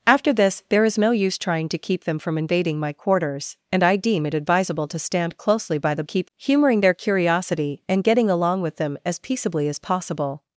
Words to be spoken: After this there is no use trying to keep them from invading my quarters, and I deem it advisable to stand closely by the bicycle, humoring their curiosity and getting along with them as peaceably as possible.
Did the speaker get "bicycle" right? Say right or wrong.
wrong